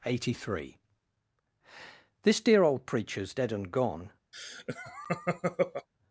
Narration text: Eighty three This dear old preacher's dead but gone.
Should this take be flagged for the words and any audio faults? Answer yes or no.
yes